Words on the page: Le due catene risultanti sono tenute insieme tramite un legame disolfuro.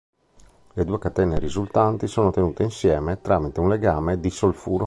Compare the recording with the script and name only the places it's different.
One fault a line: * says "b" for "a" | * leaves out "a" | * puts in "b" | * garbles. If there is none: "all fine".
all fine